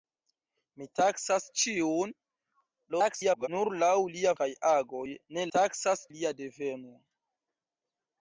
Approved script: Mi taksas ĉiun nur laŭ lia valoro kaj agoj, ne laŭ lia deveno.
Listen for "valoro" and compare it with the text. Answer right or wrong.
wrong